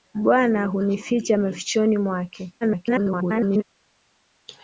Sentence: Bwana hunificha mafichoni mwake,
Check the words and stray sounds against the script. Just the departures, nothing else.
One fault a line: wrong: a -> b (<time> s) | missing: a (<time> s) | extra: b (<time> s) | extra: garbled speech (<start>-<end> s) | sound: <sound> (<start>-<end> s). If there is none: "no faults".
extra: garbled speech (2.6-3.6 s)